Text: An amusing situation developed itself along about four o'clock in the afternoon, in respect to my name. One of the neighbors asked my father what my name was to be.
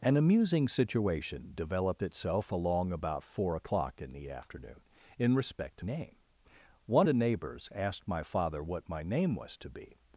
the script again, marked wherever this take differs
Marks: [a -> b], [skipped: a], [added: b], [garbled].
An amusing situation developed itself along about four o'clock in the afternoon, in respect to [skipped: my] name. One [skipped: of] the neighbors asked my father what my name was to be.